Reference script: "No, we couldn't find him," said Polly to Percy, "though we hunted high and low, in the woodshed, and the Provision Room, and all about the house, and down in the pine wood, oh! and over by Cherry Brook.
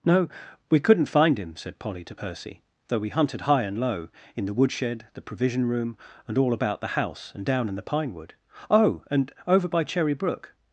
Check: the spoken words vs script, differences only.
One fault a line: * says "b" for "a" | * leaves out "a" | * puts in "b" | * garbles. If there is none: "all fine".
* leaves out "and"